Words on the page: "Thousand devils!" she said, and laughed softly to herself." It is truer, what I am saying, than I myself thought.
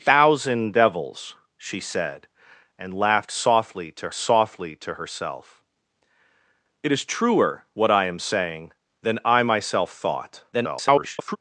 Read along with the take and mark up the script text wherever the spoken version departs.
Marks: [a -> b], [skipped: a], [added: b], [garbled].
"Thousand devils!" she said, and laughed softly to [added: softly to] herself." It is truer, what I am saying, than I myself thought. [garbled]